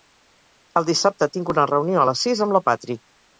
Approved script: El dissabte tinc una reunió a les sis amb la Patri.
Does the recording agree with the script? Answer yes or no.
yes